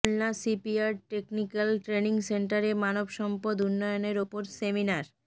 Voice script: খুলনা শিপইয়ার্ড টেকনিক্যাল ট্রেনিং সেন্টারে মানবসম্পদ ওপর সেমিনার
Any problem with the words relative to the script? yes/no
yes